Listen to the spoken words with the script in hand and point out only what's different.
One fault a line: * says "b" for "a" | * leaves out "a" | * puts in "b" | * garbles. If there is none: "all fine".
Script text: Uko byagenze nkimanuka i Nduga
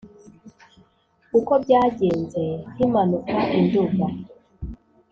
all fine